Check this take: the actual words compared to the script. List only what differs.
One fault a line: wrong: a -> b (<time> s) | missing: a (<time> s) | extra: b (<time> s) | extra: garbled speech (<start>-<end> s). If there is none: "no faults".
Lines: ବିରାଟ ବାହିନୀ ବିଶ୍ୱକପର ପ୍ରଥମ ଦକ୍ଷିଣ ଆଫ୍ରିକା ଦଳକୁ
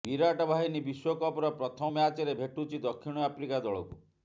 extra: ମ୍ୟାଚରେ ଭେଟୁଛି (1.9 s)